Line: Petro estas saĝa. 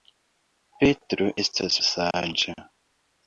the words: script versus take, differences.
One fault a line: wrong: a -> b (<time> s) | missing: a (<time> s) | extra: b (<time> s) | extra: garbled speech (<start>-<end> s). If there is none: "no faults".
no faults